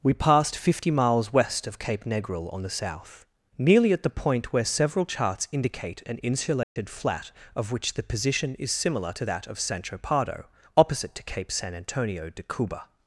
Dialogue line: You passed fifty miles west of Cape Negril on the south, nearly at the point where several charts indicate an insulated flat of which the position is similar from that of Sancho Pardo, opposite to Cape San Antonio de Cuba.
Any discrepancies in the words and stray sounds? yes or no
yes